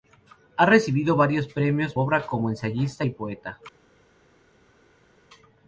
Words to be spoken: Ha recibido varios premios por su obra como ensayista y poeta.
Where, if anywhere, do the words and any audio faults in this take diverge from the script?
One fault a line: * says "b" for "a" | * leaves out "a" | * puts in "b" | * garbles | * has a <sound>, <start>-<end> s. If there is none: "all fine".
* leaves out "por su"